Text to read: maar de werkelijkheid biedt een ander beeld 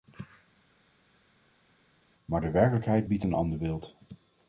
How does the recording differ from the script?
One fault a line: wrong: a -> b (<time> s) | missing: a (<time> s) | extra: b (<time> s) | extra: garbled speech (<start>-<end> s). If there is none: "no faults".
no faults